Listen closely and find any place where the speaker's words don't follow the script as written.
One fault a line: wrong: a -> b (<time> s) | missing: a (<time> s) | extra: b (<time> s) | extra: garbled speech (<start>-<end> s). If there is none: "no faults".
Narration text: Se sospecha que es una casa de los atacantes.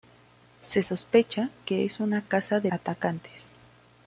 missing: los (2.7 s)